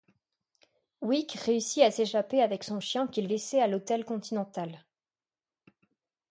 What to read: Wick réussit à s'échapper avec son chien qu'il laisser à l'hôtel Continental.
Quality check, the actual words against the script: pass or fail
pass